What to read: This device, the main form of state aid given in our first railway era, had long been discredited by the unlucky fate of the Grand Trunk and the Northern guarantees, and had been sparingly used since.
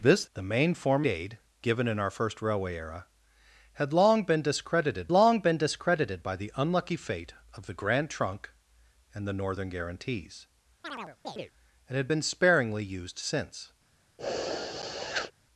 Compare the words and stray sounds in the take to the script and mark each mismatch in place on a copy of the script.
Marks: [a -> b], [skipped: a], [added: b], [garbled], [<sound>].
This [skipped: device,] the main form [skipped: of state] aid given in our first railway era, had long been discredited [added: long been discredited] by the unlucky fate of the Grand Trunk and the Northern guarantees, [chirp] and had been sparingly used since. [sniff]